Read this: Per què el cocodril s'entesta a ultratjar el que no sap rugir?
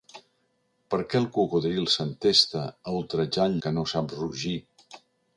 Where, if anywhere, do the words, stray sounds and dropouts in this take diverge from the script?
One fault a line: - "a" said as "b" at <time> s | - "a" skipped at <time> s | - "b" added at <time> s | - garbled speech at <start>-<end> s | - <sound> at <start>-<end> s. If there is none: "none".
none